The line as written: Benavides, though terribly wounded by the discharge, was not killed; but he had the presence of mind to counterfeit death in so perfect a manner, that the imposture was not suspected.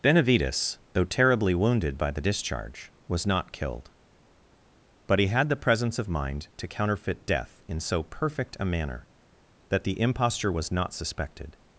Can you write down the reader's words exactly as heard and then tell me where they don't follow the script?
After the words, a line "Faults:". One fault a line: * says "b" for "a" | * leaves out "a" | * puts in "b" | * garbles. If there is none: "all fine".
Benavides, though terribly wounded by the discharge, was not killed; but he had the presence of mind to counterfeit death in so perfect a manner, that the imposture was not suspected.
Faults:
all fine